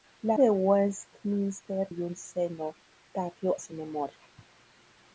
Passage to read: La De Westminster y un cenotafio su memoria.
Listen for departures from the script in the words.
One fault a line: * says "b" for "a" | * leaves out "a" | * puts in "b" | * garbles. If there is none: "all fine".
all fine